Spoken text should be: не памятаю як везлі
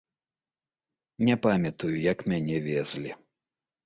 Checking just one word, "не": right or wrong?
right